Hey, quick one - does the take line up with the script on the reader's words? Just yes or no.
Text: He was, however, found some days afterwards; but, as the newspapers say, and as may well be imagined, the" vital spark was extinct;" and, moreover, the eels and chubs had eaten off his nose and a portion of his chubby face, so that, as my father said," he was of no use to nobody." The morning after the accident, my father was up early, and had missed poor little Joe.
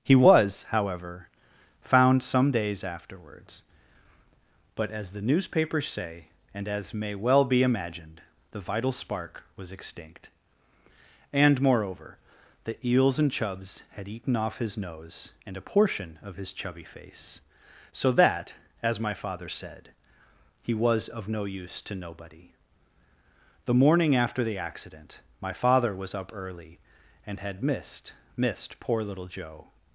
no